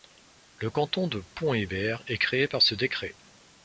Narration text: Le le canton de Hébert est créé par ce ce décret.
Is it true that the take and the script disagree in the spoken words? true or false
true